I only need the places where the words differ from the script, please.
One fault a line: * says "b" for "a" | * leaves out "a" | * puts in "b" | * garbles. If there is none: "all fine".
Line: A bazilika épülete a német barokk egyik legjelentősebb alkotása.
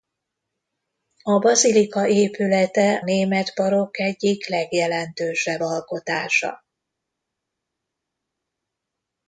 * leaves out "a"